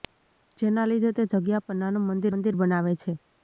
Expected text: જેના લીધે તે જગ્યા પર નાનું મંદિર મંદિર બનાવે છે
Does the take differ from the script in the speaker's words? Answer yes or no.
no